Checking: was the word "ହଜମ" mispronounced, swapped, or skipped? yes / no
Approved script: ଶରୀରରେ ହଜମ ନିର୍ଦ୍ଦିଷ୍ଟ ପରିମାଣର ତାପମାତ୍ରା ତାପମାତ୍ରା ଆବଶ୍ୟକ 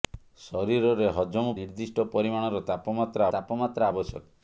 no